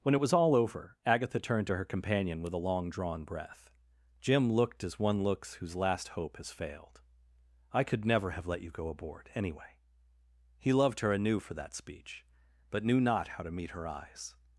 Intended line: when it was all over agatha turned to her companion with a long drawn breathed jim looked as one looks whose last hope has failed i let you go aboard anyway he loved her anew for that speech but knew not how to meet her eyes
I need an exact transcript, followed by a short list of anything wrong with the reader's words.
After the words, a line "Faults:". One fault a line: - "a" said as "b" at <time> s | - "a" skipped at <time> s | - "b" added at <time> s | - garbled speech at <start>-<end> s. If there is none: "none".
when it was all over agatha turned to her companion with a long drawn breath jim looked as one looks whose last hope has failed i could never have let you go aboard anyway he loved her anew for that speech but knew not how to meet her eyes
Faults:
- "breathed" said as "breath" at 3.3 s
- "could never have" added at 7.8 s